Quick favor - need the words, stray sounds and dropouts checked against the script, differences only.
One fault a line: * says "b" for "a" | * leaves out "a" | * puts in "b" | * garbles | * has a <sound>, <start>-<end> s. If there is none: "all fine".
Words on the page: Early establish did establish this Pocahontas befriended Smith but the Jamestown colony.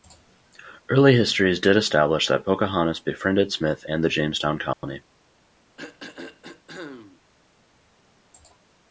* says "histories" for "establish"
* says "that" for "this"
* says "and" for "but"
* has a dropout, 4.7-4.8 s
* has a throat clearing, 5.8-7.2 s